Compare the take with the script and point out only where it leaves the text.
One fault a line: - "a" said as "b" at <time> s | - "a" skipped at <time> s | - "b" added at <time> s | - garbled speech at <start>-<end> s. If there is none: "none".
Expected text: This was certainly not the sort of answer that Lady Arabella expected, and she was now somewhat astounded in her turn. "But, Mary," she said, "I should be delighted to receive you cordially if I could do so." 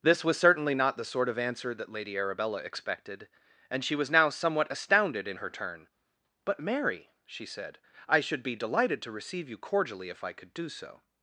none